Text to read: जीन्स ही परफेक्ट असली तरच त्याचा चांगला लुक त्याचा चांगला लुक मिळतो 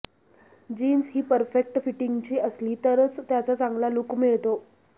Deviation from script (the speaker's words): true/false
true